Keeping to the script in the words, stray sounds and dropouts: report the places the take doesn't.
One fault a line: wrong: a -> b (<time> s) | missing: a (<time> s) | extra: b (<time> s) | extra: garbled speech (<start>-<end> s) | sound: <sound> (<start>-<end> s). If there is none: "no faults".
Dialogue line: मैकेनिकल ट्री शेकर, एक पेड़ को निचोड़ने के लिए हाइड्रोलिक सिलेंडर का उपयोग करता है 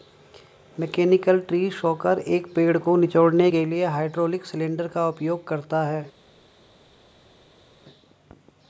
no faults